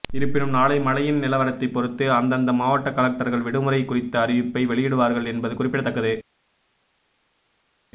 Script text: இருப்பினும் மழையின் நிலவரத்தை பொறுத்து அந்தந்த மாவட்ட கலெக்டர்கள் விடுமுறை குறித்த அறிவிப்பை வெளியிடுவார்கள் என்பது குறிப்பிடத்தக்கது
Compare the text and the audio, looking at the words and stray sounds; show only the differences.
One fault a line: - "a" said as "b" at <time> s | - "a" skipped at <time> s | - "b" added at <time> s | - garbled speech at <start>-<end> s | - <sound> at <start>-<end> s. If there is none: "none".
- "நாளை" added at 0.5 s